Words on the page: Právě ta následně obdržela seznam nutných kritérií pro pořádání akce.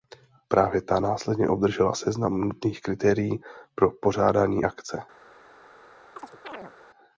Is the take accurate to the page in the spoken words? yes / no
yes